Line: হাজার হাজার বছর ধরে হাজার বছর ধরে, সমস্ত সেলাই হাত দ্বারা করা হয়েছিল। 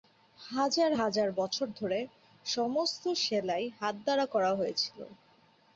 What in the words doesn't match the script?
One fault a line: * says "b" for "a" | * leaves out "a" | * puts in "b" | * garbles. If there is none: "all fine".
* leaves out "হাজার বছর ধরে"